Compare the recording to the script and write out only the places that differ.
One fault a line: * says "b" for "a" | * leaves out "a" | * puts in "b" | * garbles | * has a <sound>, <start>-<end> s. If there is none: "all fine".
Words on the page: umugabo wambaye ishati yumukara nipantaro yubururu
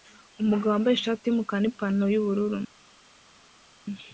all fine